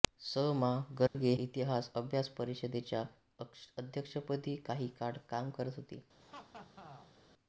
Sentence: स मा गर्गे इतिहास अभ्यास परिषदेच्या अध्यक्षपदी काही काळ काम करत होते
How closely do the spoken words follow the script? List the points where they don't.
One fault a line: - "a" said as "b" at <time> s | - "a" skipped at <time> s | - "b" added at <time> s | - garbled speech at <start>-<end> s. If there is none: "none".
none